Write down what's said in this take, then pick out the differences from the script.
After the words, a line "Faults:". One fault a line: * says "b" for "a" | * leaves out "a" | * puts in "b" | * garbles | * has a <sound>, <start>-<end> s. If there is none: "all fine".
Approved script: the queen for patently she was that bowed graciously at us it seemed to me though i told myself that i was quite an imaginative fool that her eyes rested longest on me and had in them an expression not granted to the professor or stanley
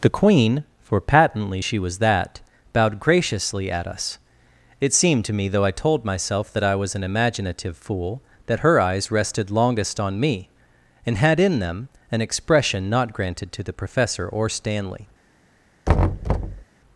the queen for patently she was that bowed graciously at us it seemed to me though i told myself that i was an imaginative fool that her eyes rested longest on me and had in them an expression not granted to the professor or stanley
Faults:
* leaves out "quite"
* has a thud, 15.9-16.6 s